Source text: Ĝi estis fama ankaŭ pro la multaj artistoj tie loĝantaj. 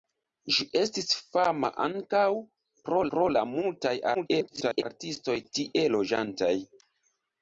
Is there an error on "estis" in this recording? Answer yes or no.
no